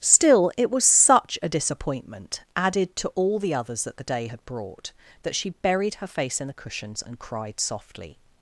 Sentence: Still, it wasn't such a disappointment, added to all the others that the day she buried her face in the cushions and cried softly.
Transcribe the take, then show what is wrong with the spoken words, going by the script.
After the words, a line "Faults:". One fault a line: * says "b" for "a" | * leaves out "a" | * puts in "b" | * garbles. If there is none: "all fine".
Still, it was such a disappointment, added to all the others that the day had brought, that she buried her face in the cushions and cried softly.
Faults:
* says "was" for "wasn't"
* puts in "had brought that"